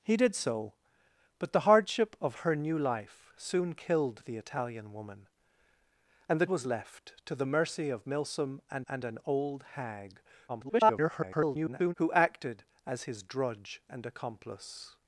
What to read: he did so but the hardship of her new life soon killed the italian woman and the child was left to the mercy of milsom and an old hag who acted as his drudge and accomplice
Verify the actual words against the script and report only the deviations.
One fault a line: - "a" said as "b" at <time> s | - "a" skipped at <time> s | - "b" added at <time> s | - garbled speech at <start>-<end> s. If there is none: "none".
- "child" skipped at 6.5 s
- "and" added at 8.9 s
- garbled speech at 10.5-11.9 s